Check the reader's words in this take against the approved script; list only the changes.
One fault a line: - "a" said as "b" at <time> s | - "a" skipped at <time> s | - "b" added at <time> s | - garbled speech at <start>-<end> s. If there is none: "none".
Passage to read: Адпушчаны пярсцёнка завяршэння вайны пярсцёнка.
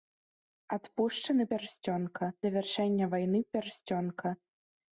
none